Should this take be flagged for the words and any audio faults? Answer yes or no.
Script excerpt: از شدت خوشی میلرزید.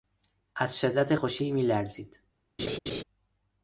yes